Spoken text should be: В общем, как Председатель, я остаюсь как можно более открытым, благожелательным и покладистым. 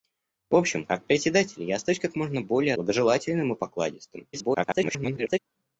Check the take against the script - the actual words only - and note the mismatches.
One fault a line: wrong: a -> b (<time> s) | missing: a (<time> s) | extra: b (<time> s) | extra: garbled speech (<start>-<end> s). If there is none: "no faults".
missing: открытым (2.7 s)
extra: garbled speech (4.3-5.4 s)